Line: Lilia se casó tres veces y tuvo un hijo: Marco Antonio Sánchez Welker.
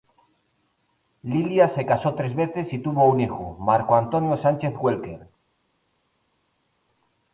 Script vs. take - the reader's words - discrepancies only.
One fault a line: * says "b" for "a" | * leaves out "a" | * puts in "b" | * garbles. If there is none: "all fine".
all fine